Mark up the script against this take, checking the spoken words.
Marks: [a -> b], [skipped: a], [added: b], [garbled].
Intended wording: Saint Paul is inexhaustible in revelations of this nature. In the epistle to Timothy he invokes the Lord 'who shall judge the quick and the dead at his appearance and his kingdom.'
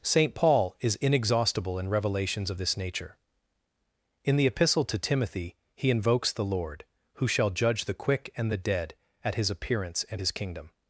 Saint Paul is inexhaustible in revelations of this nature. In the epistle to Timothy he invokes the Lord 'who shall judge the quick and the dead at his appearance and his kingdom.'